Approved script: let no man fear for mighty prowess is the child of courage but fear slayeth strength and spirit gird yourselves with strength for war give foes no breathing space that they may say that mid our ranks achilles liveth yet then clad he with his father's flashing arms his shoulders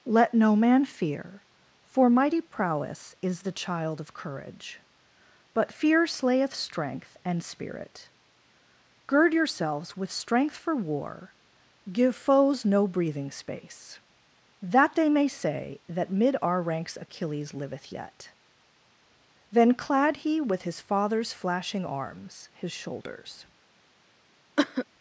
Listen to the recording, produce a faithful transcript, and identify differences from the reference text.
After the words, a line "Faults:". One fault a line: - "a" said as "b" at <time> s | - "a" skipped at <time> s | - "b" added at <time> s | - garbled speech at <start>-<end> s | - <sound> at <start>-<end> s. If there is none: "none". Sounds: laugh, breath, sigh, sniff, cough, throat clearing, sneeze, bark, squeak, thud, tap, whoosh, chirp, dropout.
let no man fear for mighty prowess is the child of courage but fear slayeth strength and spirit gird yourselves with strength for war give foes no breathing space that they may say that mid our ranks achilles liveth yet then clad he with his father's flashing arms his shoulders
Faults:
- cough at 24.6-24.9 s